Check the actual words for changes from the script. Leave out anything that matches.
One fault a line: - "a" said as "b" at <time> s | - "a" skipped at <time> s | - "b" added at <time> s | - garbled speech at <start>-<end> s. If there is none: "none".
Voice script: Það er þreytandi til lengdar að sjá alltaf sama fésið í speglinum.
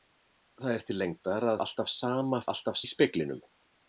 - "þreytandi" skipped at 0.8 s
- "sjá" skipped at 1.6 s
- "fésið" said as "alltaf" at 2.5 s